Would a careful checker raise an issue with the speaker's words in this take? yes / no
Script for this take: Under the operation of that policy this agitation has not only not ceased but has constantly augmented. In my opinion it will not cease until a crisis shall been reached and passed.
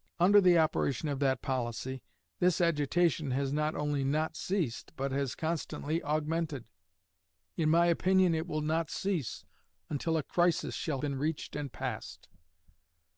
no